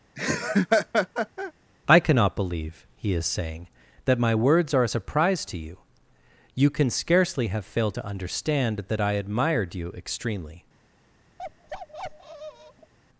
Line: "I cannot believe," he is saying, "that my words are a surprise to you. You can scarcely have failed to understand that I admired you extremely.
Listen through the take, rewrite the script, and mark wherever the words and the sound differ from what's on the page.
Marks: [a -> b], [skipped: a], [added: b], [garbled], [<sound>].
[laugh] "I cannot believe," he is saying, "that my words are a surprise to you. You can scarcely have failed to understand that I admired you extremely. [bark]